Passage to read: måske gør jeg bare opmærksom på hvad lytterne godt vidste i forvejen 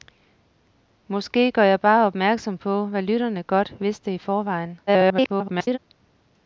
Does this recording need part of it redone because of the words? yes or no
yes